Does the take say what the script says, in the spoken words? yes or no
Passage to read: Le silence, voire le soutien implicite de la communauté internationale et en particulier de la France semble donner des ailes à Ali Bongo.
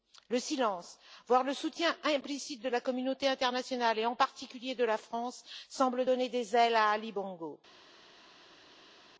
yes